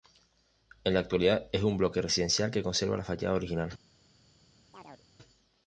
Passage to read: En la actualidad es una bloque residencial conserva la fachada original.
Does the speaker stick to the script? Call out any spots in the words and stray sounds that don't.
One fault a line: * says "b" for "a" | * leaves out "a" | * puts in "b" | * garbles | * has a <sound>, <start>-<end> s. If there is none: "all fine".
* says "un" for "una"
* puts in "que"
* has a chirp, 4.7-5.1 s